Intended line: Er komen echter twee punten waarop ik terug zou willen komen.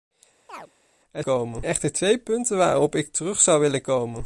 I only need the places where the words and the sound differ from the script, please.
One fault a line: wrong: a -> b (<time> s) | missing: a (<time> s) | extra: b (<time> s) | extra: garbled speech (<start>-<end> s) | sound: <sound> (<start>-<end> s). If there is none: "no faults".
sound: chirp (0.5-0.7 s)